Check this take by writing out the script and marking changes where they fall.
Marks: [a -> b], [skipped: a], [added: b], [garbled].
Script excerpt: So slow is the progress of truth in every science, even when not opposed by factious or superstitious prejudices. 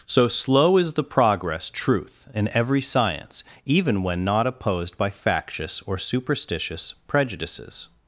So slow is the progress [skipped: of] truth in every science, even when not opposed by factious or superstitious prejudices.